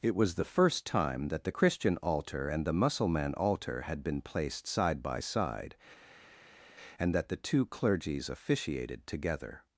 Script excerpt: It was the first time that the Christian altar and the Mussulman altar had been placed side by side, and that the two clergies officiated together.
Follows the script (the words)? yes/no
yes